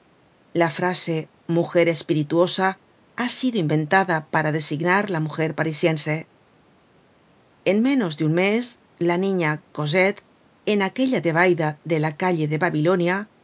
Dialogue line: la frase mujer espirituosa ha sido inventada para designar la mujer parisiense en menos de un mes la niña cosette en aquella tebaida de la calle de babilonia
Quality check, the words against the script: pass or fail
pass